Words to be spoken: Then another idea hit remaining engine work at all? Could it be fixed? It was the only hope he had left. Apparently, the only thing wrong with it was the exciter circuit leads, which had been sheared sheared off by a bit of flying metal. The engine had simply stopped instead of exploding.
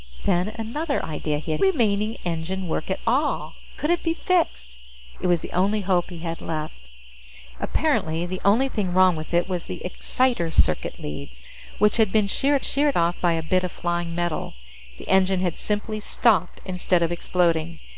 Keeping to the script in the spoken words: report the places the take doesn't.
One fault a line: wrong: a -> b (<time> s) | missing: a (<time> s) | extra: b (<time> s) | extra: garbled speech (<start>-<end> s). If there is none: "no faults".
no faults